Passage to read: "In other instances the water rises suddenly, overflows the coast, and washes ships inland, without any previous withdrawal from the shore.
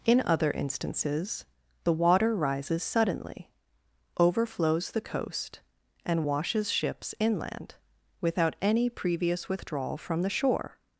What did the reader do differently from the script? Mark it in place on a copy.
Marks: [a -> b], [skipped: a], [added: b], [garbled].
"In other instances the water rises suddenly, overflows the coast, and washes ships inland, without any previous withdrawal from the shore.